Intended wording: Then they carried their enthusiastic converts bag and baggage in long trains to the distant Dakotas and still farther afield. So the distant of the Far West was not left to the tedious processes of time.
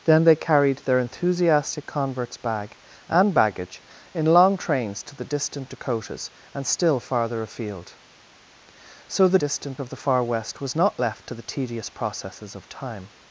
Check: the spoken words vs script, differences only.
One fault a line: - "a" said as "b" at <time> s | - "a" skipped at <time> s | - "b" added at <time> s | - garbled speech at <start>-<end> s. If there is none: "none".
none